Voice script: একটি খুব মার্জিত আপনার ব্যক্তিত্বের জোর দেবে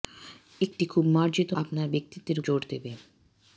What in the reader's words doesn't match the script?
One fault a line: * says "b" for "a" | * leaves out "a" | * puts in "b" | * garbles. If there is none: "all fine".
all fine